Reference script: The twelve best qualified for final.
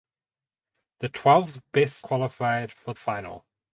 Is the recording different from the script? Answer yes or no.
no